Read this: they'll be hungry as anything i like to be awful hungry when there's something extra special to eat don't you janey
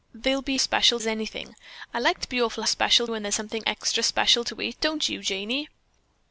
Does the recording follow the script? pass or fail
fail